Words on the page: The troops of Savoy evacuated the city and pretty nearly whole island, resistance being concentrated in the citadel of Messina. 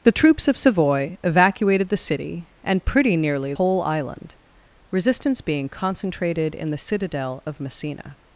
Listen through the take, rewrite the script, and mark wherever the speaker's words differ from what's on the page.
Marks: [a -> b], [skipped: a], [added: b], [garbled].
The troops of Savoy evacuated the city and pretty nearly whole island, resistance being concentrated in the citadel of Messina.